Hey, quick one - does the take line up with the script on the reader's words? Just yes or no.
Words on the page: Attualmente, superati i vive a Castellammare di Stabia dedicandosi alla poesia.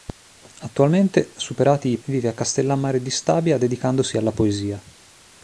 yes